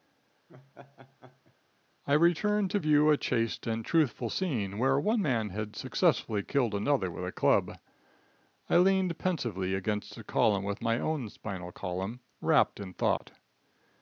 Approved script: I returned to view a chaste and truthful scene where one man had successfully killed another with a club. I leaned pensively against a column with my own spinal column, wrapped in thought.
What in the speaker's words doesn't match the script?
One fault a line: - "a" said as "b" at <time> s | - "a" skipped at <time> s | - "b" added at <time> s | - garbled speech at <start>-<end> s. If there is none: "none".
none